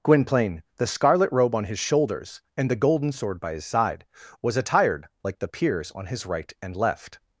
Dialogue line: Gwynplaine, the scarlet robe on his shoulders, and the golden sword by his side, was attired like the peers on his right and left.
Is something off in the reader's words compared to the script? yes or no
no